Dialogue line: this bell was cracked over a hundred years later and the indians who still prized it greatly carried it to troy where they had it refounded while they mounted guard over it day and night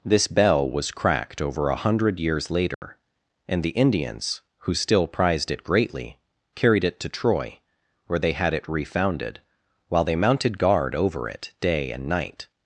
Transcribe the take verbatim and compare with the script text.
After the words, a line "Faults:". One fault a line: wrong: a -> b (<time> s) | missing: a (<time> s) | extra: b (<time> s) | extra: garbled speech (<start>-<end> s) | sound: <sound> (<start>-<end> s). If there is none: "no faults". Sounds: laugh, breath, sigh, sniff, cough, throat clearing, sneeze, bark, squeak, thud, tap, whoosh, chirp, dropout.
this bell was cracked over a hundred years later and the indians who still prized it greatly carried it to troy where they had it refounded while they mounted guard over it day and night
Faults:
sound: dropout (2.7-2.8 s)